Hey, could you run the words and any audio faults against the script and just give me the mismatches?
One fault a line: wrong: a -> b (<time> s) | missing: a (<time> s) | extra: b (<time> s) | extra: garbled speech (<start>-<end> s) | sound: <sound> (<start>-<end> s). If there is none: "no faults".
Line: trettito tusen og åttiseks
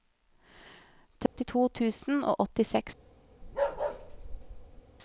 sound: dropout (1.3-1.4 s)
sound: bark (3.4-4.8 s)